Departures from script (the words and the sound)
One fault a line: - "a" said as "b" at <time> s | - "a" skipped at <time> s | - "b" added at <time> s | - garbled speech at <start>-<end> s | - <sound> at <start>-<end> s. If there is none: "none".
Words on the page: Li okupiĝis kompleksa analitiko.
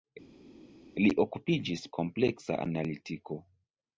none